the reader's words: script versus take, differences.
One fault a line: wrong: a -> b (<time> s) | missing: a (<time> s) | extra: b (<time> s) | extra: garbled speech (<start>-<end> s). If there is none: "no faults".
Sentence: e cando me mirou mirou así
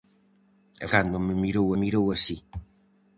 no faults